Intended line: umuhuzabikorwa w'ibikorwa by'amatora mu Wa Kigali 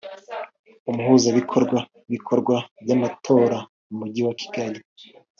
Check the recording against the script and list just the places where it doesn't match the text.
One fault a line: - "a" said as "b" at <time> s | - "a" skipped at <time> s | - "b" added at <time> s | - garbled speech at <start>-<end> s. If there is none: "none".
- "Mujyi" added at 4.0 s